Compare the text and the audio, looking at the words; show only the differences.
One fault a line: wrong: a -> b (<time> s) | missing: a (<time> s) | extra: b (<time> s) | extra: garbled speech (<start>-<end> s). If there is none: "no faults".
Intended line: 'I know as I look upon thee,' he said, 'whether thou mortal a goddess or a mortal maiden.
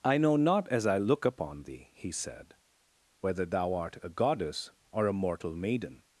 extra: not (0.3 s)
wrong: mortal -> art (3.8 s)